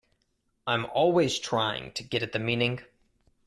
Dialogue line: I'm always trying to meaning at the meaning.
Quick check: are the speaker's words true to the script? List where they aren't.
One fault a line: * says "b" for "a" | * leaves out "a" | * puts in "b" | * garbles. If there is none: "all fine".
* says "get" for "meaning"